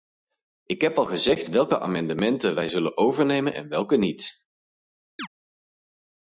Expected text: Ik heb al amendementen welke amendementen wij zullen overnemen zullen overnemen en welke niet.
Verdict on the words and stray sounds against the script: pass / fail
fail